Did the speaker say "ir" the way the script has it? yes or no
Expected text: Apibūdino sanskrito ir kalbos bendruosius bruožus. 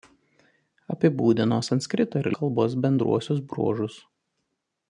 yes